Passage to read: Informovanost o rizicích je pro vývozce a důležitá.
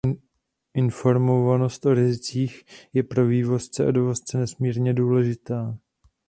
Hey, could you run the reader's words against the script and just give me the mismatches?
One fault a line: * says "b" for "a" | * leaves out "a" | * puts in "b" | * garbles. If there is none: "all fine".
* puts in "dovozce nesmírně"